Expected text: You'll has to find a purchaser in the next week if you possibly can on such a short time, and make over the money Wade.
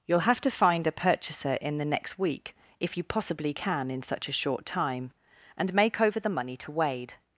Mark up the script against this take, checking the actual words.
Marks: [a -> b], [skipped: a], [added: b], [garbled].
You'll [has -> have] to find a purchaser in the next week if you possibly can [on -> in] such a short time, and make over the money [added: to] Wade.